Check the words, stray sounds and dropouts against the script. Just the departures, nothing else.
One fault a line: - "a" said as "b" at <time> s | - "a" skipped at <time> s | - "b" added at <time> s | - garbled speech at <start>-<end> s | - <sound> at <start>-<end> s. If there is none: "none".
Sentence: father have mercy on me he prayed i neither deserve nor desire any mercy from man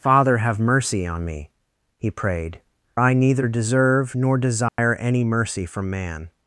- dropout at 4.7-4.8 s